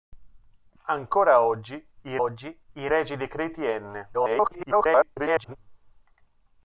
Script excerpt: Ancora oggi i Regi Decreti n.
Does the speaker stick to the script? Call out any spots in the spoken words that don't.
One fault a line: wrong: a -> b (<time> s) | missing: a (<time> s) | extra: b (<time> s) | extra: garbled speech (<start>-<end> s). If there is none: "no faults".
extra: oggi i (2.2 s)
extra: garbled speech (4.1-5.6 s)